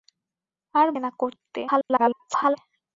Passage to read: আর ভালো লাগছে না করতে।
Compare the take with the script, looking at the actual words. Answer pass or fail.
fail